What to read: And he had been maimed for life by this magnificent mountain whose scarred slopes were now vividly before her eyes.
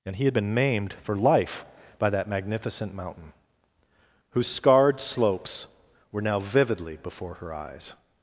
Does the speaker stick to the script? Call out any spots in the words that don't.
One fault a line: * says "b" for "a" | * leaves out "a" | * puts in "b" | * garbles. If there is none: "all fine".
* says "that" for "this"